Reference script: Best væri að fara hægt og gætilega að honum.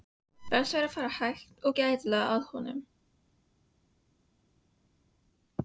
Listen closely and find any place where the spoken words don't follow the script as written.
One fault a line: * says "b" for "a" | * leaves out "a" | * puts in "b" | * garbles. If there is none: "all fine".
all fine